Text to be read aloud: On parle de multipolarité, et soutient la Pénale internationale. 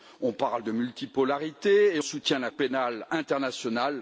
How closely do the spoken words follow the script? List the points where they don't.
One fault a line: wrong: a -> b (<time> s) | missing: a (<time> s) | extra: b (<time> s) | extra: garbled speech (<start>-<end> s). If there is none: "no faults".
no faults